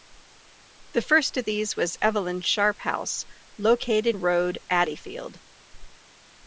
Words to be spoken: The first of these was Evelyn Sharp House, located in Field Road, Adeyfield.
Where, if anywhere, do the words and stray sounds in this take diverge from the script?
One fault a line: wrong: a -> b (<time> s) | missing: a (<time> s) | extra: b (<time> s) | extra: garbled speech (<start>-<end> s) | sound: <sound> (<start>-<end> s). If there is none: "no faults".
missing: in Field (4.2 s)